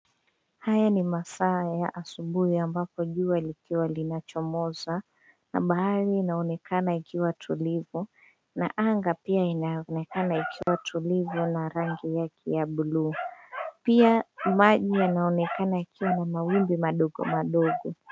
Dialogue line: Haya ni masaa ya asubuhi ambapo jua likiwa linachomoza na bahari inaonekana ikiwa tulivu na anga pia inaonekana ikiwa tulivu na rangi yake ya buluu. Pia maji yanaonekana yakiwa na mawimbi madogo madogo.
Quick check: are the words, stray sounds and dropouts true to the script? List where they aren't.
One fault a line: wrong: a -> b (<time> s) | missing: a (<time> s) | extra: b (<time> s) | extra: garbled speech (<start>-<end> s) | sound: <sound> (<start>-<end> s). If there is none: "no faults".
sound: dropout (10.6-10.7 s)